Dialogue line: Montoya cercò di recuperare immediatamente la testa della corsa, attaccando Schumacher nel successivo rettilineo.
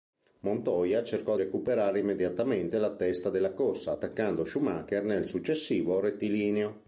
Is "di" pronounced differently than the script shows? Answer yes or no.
yes